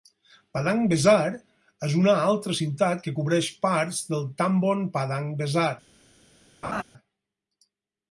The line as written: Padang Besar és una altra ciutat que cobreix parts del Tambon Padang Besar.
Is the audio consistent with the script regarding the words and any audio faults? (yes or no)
no